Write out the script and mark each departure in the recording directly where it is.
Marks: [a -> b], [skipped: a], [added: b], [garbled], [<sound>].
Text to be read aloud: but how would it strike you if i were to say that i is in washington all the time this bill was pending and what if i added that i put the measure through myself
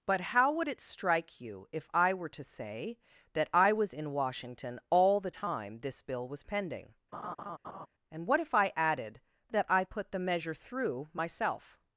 but how would it strike you if i were to say that i [is -> was] in washington all the time this bill was pending [laugh] and what if i added that i put the measure through myself